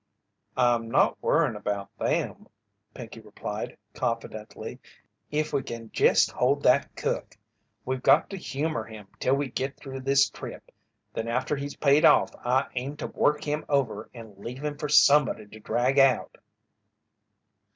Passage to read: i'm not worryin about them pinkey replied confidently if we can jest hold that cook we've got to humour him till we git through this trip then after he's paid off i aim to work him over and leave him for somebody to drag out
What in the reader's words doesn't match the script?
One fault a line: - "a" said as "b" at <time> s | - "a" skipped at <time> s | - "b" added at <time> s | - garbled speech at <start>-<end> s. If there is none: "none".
none